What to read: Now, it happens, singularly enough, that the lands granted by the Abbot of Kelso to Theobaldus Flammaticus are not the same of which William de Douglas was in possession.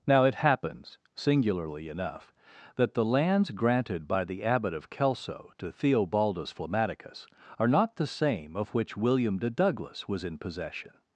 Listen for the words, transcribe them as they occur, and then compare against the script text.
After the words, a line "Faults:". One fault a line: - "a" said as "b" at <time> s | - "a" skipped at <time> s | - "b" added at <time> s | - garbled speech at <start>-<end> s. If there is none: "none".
Now, it happens, singularly enough, that the lands granted by the Abbot of Kelso to Theobaldus Flammaticus are not the same of which William de Douglas was in possession.
Faults:
none